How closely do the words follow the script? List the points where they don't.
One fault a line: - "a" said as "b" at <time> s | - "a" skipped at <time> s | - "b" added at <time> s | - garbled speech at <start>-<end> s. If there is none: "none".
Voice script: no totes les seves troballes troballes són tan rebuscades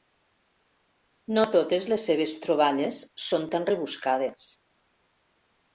- "troballes" skipped at 3.0 s